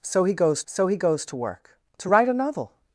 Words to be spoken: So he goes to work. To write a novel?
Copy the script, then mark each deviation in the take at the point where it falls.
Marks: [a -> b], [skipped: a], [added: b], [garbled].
So he goes [added: so he goes] to work. To write a novel?